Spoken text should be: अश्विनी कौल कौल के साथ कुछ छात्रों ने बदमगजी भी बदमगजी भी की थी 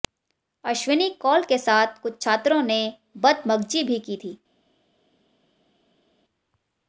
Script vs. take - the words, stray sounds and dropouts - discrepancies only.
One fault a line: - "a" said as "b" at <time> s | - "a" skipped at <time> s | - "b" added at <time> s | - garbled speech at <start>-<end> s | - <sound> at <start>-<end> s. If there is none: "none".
- "कौल" skipped at 1.4 s
- "बदमगजी भी" skipped at 4.0 s